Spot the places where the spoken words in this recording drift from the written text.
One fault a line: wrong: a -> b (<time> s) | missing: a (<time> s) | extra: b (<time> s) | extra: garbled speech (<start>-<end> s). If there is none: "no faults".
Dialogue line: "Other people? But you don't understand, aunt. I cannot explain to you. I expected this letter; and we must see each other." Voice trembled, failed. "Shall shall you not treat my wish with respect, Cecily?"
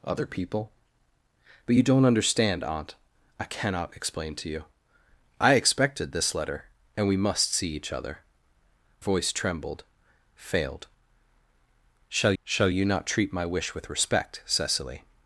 no faults